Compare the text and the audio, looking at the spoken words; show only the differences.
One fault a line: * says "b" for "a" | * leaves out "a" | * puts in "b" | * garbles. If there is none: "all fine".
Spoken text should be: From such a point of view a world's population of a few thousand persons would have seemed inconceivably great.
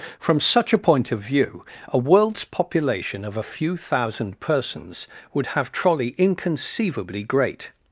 * says "trolley" for "seemed"